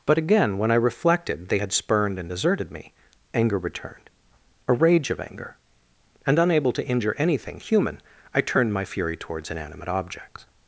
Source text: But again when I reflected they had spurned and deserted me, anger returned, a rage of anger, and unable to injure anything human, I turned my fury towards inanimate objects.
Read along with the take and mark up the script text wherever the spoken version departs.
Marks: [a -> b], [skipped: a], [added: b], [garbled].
But again when I reflected they had spurned and deserted me, anger returned, a rage of anger, and unable to injure anything human, I turned my fury towards inanimate objects.